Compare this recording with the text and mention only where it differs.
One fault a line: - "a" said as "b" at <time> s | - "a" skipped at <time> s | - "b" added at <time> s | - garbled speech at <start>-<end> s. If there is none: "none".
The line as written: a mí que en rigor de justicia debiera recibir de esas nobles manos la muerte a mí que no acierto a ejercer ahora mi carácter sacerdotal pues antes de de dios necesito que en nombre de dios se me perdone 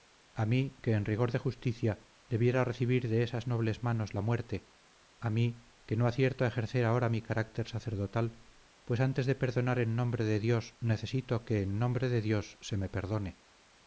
- "perdonar en nombre" added at 9.3 s